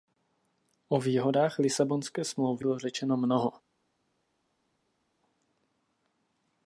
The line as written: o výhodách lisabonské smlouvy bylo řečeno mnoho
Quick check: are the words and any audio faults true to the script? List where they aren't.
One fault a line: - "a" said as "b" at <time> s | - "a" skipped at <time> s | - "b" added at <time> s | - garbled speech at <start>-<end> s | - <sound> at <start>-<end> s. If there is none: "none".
none